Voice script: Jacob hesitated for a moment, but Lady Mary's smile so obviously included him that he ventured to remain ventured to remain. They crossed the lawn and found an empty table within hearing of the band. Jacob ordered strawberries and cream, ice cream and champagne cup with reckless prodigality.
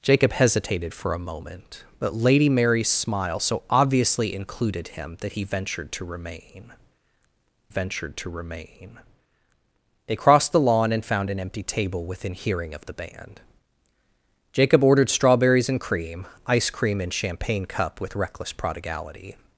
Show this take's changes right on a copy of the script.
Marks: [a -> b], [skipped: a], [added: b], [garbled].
Jacob hesitated for a moment, but Lady Mary's smile so obviously included him that he ventured to remain ventured to remain. They crossed the lawn and found an empty table within hearing of the band. Jacob ordered strawberries and cream, ice cream and champagne cup with reckless prodigality.